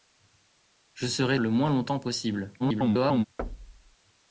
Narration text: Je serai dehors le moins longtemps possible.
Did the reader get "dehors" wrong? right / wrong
wrong